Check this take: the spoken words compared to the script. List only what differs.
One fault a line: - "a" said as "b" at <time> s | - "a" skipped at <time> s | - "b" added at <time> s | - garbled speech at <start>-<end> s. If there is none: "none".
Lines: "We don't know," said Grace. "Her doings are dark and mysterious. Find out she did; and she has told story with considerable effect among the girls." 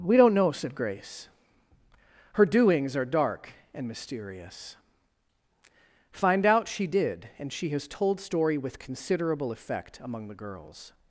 none